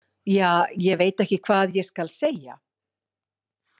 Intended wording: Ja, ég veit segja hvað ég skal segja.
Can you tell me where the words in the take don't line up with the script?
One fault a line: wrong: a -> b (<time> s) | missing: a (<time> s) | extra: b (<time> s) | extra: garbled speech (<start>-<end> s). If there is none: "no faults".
wrong: segja -> ekki (1.2 s)